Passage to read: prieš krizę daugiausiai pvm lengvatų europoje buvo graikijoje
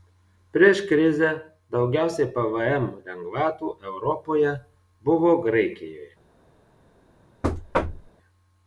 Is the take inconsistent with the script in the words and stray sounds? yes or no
yes